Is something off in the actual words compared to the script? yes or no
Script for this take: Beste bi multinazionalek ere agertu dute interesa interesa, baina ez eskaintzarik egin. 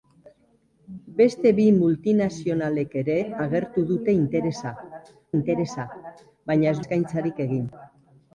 no